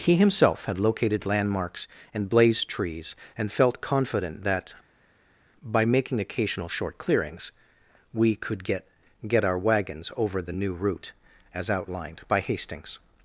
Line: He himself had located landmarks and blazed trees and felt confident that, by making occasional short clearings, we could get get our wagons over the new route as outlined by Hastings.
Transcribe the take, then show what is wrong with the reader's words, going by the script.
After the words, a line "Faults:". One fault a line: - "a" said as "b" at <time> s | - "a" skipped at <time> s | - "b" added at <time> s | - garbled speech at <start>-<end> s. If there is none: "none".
He himself had located landmarks and blazed trees and felt confident that, by making occasional short clearings, we could get get our wagons over the new route as outlined by Hastings.
Faults:
none